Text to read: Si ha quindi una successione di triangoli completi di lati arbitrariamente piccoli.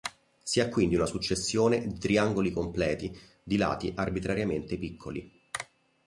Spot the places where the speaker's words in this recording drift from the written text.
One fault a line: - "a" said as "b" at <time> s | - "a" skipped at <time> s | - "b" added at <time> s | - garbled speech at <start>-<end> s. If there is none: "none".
none